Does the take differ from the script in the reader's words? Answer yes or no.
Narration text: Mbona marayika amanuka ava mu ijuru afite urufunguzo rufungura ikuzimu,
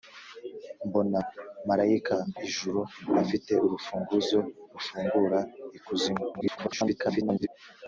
yes